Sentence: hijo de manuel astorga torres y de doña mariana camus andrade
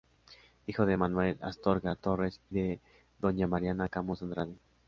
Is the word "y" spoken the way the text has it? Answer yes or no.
no